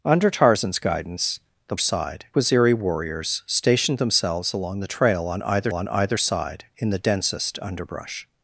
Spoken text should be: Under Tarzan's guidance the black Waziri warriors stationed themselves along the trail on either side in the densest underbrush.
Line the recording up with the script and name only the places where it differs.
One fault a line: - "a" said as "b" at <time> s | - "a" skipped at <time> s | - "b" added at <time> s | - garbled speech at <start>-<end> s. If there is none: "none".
- "black" said as "side" at 1.8 s
- "on either" added at 5.7 s